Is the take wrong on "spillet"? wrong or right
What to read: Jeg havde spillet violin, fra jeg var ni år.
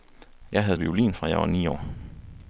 wrong